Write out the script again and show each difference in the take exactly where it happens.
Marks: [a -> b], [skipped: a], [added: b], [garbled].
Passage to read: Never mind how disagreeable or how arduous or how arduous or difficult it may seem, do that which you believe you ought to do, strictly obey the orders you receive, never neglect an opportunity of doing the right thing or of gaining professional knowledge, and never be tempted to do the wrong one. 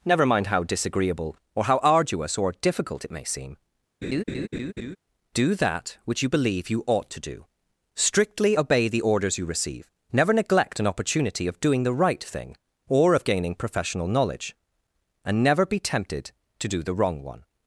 Never mind how disagreeable or how arduous or [skipped: how arduous or] difficult it may seem, do that which you believe you ought to do, strictly obey the orders you receive, never neglect an opportunity of doing the right thing or of gaining professional knowledge, and never be tempted to do the wrong one.